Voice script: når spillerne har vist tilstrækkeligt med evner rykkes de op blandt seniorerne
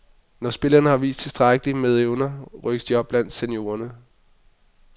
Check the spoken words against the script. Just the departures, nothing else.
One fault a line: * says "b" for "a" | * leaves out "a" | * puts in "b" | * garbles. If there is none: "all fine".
all fine